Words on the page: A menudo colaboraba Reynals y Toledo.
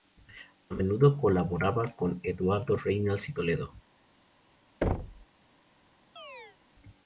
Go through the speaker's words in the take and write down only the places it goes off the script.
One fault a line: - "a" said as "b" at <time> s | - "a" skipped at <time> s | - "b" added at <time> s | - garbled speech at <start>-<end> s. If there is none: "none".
- "con Eduardo" added at 1.9 s